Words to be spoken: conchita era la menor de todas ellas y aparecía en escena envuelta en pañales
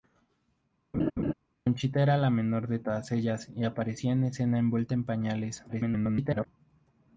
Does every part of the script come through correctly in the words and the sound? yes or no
no